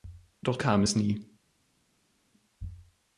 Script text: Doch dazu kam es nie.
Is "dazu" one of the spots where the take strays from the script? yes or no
yes